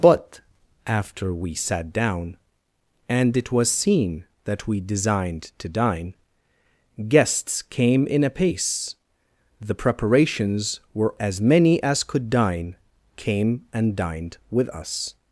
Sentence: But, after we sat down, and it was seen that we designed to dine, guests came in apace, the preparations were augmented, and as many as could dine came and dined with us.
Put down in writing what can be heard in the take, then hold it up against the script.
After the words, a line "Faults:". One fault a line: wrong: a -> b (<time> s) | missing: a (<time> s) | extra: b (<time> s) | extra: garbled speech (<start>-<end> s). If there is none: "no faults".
But, after we sat down, and it was seen that we designed to dine, guests came in apace, the preparations were as many as could dine came and dined with us.
Faults:
missing: augmented and (11.1 s)